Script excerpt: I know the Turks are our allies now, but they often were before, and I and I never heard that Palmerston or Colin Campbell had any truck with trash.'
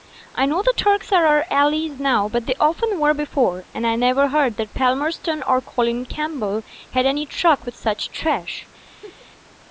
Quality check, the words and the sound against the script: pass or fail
fail